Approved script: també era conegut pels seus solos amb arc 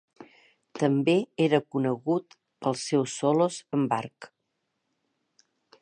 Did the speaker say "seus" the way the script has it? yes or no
yes